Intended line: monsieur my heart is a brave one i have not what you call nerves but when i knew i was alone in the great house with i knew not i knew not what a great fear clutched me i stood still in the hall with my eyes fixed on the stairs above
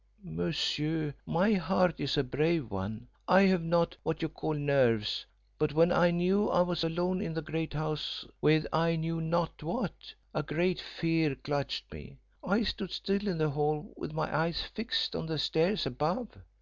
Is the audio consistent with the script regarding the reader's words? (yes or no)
no